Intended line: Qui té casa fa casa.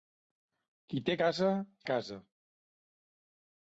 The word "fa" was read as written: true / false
false